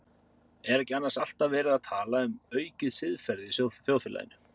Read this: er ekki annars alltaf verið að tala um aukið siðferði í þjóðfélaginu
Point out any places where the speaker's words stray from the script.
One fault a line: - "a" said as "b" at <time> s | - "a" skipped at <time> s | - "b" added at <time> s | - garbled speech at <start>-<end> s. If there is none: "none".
none